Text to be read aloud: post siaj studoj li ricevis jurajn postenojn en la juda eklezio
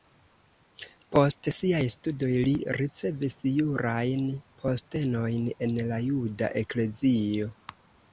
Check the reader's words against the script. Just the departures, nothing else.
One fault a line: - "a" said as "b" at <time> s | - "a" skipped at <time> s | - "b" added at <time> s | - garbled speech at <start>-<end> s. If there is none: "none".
none